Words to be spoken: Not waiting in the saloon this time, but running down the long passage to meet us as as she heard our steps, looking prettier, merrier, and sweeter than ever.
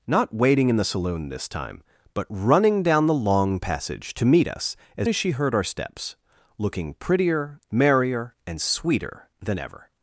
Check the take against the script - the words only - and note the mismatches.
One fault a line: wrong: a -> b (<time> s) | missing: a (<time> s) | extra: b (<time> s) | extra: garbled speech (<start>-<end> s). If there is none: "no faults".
no faults